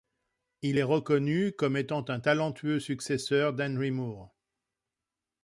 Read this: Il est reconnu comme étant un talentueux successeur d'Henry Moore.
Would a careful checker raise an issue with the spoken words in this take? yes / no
no